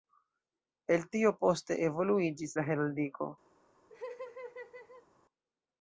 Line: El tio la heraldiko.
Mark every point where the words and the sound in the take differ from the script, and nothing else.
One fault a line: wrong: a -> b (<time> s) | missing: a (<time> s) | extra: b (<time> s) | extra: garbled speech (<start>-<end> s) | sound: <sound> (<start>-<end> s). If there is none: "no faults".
extra: poste evoluiĝis (1.4 s)
sound: laugh (3.9-5.1 s)